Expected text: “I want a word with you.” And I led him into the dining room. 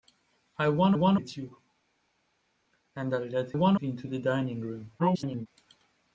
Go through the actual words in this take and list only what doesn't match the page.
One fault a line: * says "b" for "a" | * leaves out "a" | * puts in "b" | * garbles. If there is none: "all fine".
* says "want" for "word"
* says "want" for "him"
* garbles